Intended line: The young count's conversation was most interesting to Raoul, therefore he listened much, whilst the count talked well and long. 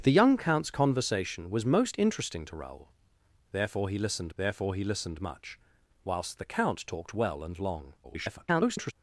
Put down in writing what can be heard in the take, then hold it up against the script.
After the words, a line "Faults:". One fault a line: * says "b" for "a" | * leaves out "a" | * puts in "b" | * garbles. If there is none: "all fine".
The young count's conversation was most interesting to Raoul, therefore he listened therefore he listened much, whilst the count talked well and long. [garbled]
Faults:
* puts in "therefore he listened"
* garbles